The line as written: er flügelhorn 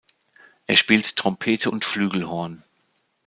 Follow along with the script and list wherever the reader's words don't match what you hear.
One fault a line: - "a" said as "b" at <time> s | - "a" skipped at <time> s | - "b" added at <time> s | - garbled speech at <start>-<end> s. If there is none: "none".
- "spielt trompete und" added at 0.8 s